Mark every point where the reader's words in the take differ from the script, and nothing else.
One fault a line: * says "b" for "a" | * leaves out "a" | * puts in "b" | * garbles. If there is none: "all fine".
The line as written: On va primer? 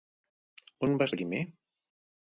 all fine